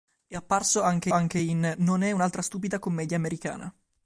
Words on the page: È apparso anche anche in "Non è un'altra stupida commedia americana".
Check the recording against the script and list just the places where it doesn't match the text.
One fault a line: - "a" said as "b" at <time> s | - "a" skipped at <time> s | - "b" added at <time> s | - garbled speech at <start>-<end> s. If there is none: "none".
none